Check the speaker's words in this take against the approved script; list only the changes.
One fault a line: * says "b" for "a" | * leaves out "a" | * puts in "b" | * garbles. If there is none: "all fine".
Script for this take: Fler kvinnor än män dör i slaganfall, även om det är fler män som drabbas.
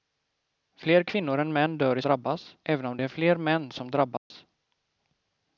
* says "drabbas" for "slaganfall"